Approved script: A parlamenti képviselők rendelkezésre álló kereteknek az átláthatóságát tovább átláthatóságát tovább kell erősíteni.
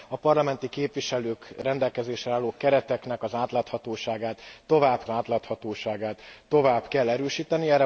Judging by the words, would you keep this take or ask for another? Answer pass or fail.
pass